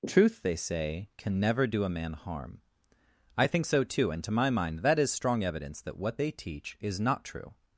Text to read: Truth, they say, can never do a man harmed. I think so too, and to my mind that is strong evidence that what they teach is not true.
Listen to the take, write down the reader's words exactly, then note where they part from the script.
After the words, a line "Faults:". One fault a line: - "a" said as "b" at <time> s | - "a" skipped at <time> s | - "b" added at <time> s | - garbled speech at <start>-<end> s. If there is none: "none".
Truth, they say, can never do a man harm. I think so too, and to my mind that is strong evidence that what they teach is not true.
Faults:
- "harmed" said as "harm" at 2.1 s